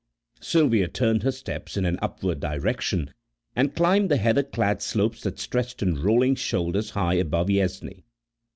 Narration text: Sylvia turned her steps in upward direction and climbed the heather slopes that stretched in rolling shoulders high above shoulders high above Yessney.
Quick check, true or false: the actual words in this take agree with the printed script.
false